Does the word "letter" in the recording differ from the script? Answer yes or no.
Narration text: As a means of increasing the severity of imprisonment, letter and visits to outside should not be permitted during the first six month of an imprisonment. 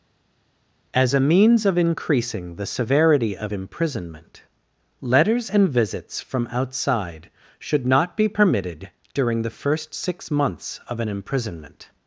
yes